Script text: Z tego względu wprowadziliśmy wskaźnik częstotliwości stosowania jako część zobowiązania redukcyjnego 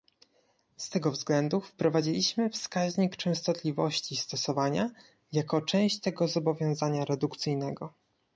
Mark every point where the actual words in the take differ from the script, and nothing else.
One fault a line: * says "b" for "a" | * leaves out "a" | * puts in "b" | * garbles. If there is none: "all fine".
* puts in "tego"